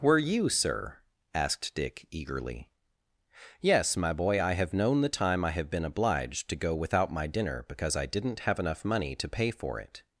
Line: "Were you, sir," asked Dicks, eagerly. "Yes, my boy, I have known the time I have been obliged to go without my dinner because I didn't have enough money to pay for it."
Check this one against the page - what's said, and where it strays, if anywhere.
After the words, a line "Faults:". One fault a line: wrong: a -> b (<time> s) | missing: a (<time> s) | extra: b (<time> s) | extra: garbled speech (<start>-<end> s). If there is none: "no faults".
"Were you, sir," asked Dick, eagerly. "Yes, my boy, I have known the time I have been obliged to go without my dinner because I didn't have enough money to pay for it."
Faults:
wrong: Dicks -> Dick (1.8 s)